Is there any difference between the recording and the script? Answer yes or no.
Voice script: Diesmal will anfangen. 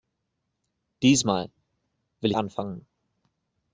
no